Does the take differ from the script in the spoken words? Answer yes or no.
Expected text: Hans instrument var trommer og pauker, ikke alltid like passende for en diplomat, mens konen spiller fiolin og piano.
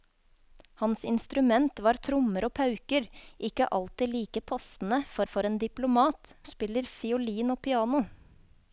yes